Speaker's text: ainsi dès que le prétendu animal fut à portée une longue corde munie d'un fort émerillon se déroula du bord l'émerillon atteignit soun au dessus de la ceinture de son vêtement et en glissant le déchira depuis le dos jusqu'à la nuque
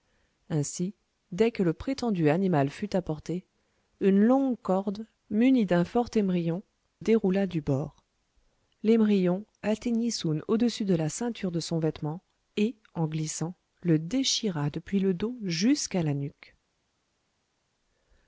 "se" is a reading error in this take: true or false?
true